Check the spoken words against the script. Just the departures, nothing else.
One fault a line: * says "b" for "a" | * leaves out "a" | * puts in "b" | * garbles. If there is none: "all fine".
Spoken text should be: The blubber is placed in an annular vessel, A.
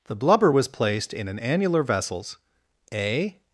* says "was" for "is"
* says "vessels" for "vessel"